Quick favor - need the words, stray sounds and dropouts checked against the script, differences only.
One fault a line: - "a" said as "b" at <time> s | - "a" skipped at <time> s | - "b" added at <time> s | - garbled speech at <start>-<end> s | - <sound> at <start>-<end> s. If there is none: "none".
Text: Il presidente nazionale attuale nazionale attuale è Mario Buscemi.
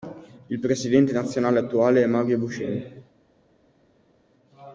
- "nazionale attuale" skipped at 2.0 s